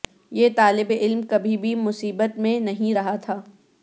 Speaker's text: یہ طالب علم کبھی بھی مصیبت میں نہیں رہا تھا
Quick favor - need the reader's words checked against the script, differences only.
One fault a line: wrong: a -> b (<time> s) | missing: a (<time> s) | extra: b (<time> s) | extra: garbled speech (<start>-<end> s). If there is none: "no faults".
no faults